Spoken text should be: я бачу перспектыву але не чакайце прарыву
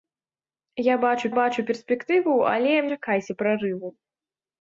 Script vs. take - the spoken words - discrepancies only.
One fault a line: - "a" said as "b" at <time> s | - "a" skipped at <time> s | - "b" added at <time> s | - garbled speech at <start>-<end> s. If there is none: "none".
- "бачу" added at 1.4 s
- "не" skipped at 2.8 s